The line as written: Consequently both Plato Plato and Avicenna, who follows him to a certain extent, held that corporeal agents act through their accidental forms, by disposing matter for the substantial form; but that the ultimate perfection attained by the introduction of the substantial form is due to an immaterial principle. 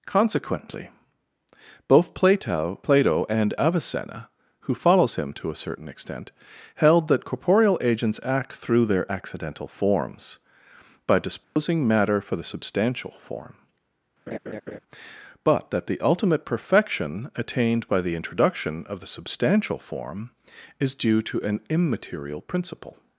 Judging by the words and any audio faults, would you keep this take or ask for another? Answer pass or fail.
fail